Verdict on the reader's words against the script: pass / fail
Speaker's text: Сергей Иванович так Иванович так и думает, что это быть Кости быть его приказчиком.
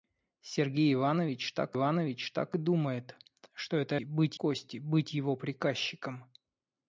pass